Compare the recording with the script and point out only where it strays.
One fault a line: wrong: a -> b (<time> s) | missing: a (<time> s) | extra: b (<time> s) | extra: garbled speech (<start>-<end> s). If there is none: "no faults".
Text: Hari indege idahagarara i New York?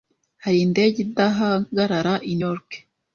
missing: New (2.3 s)